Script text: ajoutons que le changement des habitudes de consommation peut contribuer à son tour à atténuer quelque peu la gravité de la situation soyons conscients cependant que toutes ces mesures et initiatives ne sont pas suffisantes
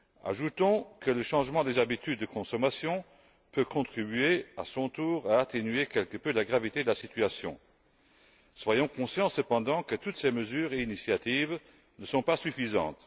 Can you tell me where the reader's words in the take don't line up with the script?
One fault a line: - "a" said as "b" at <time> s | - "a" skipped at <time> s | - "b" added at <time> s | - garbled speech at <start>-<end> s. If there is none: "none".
none